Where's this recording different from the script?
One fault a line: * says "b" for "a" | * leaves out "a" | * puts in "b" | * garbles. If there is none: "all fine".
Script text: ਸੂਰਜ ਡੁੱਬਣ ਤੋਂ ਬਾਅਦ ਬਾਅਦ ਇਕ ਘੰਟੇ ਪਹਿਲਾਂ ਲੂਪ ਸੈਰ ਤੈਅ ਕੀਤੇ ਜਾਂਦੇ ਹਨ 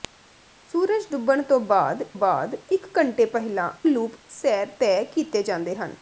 all fine